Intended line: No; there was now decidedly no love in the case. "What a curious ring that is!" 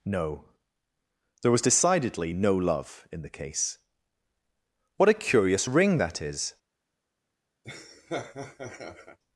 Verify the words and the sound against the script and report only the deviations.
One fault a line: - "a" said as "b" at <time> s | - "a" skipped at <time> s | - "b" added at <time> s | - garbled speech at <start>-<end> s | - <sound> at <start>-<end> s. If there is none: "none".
- "now" skipped at 1.6 s
- laugh at 7.6-9.2 s